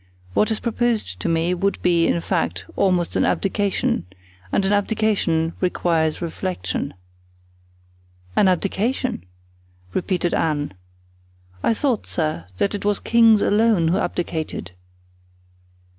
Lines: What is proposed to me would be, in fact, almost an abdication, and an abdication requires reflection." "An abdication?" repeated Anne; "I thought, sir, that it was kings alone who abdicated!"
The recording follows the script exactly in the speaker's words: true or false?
true